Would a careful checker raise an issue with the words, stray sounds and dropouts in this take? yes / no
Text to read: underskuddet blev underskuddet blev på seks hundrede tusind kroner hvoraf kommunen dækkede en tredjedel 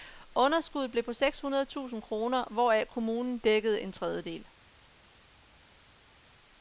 yes